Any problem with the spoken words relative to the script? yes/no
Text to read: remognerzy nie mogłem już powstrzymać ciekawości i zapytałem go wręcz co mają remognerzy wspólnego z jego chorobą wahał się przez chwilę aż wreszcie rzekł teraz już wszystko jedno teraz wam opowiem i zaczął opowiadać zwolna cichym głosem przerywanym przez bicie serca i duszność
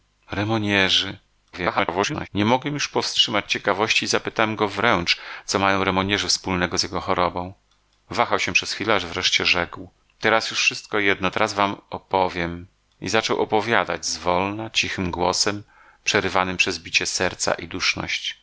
yes